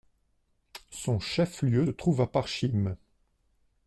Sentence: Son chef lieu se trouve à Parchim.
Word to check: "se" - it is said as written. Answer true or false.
false